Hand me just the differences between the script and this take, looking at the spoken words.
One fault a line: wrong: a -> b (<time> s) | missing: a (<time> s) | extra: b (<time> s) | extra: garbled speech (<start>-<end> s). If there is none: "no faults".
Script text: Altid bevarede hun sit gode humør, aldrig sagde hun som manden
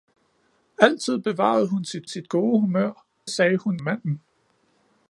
extra: sit (2.1 s)
missing: aldrig (3.1 s)
missing: som (3.8 s)